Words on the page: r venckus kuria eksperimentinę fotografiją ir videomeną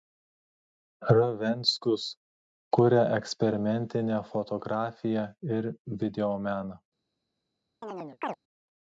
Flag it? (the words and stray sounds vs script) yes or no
yes